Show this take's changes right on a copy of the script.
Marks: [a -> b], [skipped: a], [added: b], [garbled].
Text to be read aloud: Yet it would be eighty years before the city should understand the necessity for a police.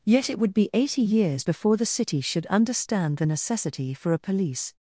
Yet it would be eighty years before the city should understand the necessity for a police.